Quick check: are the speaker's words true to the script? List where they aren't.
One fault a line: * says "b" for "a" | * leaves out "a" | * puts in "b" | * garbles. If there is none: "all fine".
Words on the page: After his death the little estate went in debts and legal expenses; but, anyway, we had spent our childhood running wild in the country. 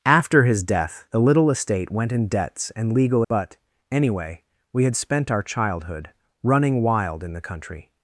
* leaves out "expenses"